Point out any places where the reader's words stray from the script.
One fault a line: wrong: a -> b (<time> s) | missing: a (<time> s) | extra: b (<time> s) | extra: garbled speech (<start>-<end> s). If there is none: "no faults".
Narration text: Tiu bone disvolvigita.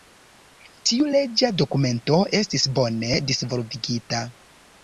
extra: leĝa dokumento estis (1.2 s)